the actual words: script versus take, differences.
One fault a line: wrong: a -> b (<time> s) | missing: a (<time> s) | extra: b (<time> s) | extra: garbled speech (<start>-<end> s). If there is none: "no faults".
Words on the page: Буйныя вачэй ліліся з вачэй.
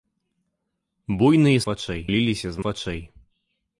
no faults